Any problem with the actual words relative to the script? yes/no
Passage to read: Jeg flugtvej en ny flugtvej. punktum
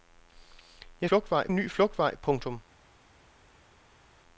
no